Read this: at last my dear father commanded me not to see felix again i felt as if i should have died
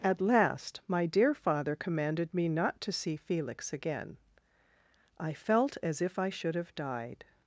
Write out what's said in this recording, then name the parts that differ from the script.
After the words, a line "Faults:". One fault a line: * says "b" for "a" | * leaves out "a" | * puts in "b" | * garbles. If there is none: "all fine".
at last my dear father commanded me not to see felix again i felt as if i should have died
Faults:
all fine